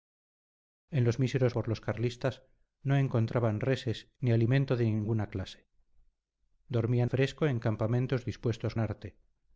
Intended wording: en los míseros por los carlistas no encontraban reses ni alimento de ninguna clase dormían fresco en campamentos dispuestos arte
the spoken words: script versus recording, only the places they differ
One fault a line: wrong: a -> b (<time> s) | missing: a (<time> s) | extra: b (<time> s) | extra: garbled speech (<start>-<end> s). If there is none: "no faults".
no faults